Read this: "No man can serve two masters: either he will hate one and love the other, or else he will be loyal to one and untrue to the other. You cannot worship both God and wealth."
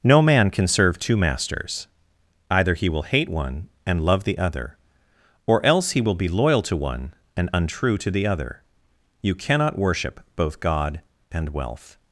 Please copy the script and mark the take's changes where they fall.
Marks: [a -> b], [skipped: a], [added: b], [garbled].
"No man can serve two masters: either he will hate one and love the other, or else he will be loyal to one and untrue to the other. You cannot worship both God and wealth."